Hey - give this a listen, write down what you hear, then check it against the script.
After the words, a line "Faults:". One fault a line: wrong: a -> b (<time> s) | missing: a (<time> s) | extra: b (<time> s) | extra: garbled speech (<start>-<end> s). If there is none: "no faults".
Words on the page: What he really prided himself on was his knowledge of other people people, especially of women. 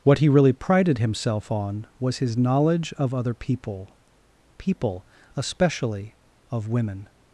What he really prided himself on was his knowledge of other people people, especially of women.
Faults:
no faults